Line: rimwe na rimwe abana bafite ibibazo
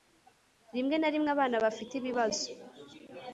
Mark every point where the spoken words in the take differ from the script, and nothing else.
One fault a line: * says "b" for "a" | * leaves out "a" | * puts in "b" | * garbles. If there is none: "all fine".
all fine